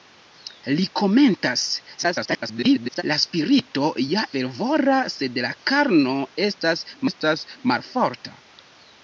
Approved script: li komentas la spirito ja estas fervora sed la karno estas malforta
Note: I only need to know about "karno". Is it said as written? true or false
true